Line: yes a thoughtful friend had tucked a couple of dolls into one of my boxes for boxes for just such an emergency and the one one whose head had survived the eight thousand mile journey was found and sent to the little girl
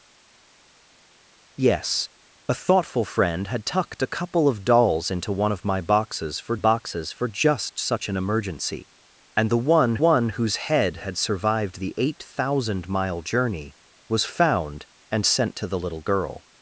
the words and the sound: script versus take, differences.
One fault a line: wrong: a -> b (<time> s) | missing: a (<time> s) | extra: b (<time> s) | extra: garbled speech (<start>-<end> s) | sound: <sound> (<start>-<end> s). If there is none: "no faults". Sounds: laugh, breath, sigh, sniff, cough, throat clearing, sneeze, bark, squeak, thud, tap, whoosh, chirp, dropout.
no faults